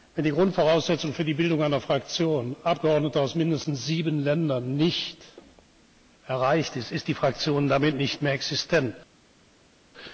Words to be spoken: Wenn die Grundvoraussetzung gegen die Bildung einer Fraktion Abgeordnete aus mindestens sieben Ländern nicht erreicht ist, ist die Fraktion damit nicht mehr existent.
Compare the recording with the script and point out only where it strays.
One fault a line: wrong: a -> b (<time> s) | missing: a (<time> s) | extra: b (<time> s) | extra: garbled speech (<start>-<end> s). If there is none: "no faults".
wrong: gegen -> für (1.1 s)